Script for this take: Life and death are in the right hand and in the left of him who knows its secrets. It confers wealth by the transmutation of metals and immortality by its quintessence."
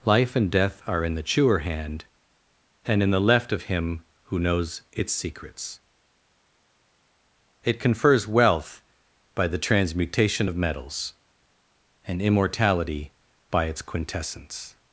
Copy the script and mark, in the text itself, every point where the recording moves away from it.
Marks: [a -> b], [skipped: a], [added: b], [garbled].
Life and death are in the [right -> chewer] hand and in the left of him who knows its secrets. It confers wealth by the transmutation of metals and immortality by its quintessence."